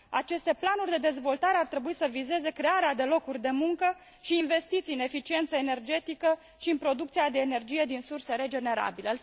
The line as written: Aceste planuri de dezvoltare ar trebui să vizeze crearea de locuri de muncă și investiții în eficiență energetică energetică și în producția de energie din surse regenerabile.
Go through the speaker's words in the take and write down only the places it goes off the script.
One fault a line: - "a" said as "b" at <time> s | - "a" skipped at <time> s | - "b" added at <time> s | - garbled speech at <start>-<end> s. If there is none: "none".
- "energetică" skipped at 6.4 s